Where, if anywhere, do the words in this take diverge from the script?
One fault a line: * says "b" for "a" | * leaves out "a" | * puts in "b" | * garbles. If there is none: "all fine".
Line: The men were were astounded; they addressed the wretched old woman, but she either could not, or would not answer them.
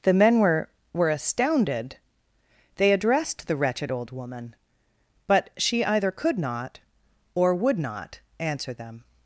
all fine